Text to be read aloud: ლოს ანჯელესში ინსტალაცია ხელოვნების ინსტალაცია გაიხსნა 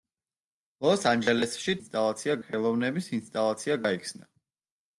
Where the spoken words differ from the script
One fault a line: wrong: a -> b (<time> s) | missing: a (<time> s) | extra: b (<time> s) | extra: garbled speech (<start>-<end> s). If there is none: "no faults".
no faults